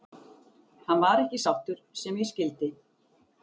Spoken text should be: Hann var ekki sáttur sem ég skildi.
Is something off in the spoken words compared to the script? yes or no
no